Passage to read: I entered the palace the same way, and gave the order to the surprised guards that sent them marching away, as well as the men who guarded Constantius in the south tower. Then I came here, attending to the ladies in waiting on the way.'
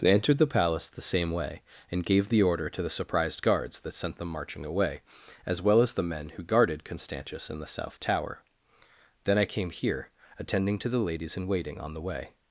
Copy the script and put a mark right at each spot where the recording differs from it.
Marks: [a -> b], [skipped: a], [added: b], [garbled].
[I -> they] entered the palace the same way, and gave the order to the surprised guards that sent them marching away, as well as the men who guarded Constantius in the south tower. Then I came here, attending to the ladies in waiting on the way.'